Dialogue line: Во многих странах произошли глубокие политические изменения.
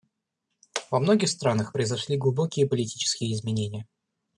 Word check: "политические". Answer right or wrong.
right